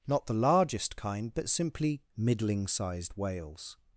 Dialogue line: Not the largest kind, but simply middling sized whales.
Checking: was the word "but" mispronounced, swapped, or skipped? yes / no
no